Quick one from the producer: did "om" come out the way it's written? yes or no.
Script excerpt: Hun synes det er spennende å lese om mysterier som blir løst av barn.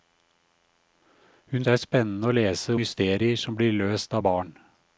no